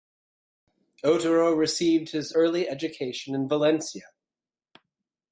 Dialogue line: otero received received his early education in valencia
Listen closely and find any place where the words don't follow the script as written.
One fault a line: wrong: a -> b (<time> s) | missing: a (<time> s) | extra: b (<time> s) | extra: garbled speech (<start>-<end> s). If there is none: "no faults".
missing: received (2.1 s)